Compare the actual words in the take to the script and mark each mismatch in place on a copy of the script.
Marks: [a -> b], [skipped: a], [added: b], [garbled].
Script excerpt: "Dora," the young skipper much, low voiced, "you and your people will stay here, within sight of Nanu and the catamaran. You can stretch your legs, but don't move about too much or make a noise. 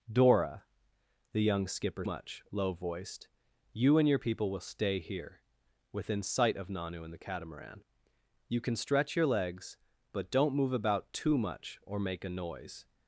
"Dora," the young skipper much, low voiced, "you and your people will stay here, within sight of Nanu and the catamaran. You can stretch your legs, but don't move about too much or make a noise.